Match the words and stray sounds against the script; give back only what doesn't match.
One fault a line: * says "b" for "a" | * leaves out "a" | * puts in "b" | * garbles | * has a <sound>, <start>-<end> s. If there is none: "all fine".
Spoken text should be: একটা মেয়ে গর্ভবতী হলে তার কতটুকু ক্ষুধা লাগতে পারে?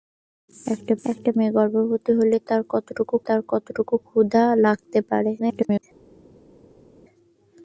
* puts in "একটা"
* puts in "তার কতটুকু"
* garbles